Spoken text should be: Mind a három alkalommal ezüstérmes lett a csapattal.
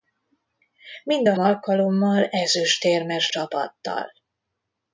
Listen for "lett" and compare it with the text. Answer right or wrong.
wrong